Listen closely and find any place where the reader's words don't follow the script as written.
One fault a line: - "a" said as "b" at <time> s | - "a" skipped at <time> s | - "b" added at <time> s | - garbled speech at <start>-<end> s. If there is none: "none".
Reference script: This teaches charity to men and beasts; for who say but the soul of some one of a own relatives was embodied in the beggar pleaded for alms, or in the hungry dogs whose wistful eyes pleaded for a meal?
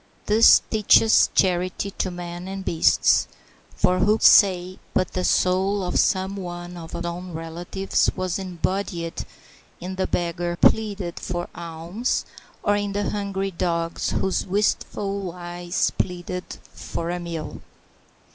none